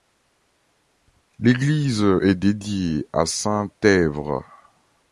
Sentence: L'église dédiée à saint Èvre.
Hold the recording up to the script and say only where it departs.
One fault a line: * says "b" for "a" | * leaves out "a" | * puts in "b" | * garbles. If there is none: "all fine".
* puts in "est"